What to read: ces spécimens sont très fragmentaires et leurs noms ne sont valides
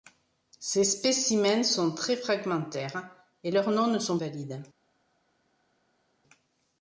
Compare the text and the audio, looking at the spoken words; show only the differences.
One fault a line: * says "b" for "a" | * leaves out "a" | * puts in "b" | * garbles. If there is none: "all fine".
all fine